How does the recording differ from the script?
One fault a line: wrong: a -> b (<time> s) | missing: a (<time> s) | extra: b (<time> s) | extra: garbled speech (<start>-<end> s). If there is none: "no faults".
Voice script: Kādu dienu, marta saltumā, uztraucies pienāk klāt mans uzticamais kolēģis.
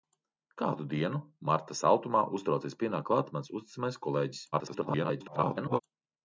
extra: garbled speech (4.5-5.8 s)